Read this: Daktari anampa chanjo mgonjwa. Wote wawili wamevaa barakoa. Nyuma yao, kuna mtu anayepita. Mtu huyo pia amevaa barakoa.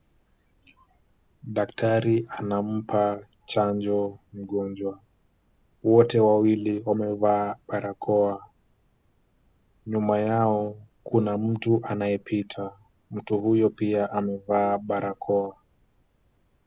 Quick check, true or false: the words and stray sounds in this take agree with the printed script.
true